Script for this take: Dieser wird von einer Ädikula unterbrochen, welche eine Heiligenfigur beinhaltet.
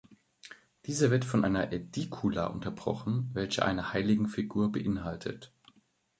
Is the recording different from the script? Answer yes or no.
no